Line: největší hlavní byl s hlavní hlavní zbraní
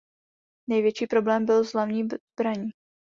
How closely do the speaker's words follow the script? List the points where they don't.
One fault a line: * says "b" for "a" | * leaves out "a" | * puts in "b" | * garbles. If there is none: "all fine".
* says "problém" for "hlavní"
* leaves out "hlavní"